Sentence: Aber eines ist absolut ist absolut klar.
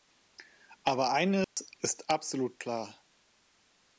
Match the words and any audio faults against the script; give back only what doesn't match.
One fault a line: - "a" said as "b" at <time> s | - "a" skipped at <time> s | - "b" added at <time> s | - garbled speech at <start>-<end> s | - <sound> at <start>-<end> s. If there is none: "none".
- dropout at 1.4-1.6 s
- "ist absolut" skipped at 2.6 s